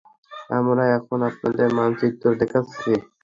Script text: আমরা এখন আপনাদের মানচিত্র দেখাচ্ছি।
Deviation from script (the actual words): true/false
false